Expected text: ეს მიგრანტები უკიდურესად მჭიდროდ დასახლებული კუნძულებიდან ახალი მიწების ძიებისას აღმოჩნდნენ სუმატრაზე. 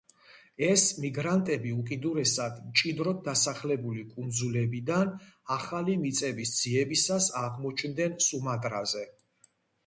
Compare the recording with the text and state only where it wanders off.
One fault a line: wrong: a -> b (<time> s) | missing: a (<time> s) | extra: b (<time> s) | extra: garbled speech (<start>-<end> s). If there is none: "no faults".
no faults